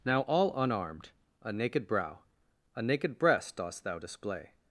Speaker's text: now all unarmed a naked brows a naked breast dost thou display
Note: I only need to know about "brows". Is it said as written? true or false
false